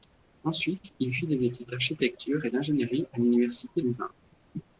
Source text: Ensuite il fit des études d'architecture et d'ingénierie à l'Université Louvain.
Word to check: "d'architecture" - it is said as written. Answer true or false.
true